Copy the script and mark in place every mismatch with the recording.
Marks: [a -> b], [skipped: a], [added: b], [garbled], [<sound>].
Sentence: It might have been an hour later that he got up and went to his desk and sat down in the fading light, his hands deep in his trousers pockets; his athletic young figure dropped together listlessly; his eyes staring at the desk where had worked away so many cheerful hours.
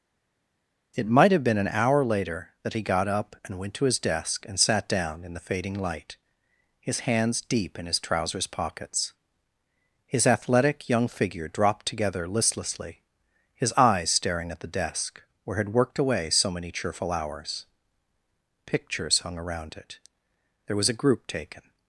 It might have been an hour later that he got up and went to his desk and sat down in the fading light, his hands deep in his trousers pockets; his athletic young figure dropped together listlessly; his eyes staring at the desk where had worked away so many cheerful hours. [added: Pictures hung around it there was a group taken]